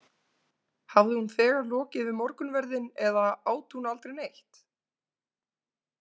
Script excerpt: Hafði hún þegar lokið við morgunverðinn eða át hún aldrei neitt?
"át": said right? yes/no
yes